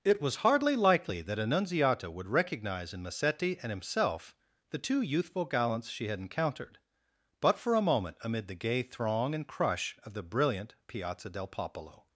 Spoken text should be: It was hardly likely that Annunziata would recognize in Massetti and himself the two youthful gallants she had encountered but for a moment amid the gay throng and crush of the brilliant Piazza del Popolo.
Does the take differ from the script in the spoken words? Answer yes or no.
no